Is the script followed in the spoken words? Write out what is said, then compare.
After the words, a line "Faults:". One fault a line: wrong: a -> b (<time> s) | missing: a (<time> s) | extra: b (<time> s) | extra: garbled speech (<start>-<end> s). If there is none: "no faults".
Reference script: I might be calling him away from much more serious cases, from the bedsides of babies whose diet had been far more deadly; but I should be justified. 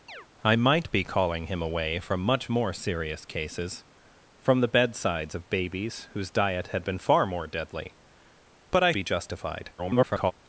I might be calling him away from much more serious cases, from the bedsides of babies whose diet had been far more deadly; but I be justified. [garbled]
Faults:
missing: should (8.9 s)
extra: garbled speech (9.8-10.3 s)